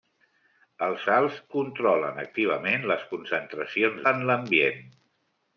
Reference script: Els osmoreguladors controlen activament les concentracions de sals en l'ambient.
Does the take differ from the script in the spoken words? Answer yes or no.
yes